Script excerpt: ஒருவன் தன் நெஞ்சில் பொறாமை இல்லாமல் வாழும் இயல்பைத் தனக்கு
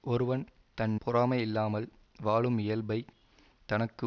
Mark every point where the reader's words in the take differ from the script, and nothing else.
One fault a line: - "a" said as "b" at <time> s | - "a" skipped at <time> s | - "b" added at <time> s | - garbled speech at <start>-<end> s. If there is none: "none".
- "நெஞ்சில்" skipped at 0.9 s